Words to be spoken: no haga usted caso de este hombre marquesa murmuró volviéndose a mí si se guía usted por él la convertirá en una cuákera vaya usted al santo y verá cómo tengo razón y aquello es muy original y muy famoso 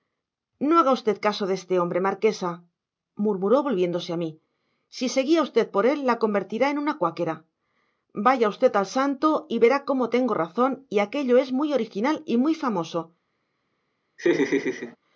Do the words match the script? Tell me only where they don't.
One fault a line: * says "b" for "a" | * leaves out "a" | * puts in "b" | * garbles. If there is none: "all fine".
all fine